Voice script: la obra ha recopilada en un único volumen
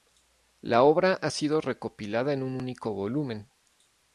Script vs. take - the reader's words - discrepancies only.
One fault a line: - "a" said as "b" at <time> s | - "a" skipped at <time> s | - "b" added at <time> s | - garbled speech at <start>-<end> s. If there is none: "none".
- "sido" added at 1.3 s